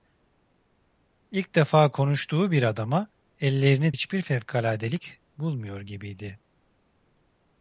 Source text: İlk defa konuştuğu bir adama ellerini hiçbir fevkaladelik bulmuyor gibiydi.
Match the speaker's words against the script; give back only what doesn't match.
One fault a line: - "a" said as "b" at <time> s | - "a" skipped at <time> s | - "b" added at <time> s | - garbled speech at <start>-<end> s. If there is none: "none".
none